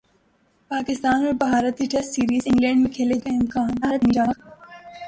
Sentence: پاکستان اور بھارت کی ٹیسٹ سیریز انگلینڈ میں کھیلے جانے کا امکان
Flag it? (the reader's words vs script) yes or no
yes